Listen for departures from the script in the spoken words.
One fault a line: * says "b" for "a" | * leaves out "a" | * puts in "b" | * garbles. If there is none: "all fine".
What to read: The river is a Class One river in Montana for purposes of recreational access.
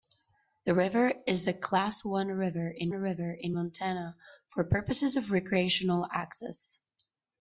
* puts in "river in"